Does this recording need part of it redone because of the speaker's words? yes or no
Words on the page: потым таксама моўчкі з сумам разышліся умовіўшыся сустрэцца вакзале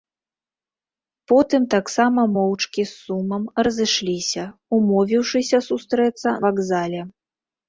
no